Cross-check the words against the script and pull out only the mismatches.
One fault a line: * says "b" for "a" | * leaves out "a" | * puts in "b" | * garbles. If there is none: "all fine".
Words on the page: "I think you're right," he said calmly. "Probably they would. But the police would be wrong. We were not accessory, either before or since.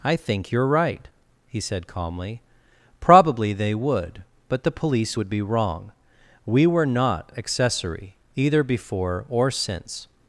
all fine